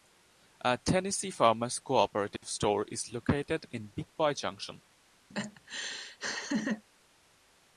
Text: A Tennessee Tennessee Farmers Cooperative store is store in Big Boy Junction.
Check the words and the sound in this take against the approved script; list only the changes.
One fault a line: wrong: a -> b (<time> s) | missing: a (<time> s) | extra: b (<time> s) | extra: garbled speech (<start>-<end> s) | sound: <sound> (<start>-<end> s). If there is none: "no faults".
missing: Tennessee (1.3 s)
sound: dropout (2.4-2.4 s)
wrong: store -> located (3.1 s)
sound: laugh (5.3-6.8 s)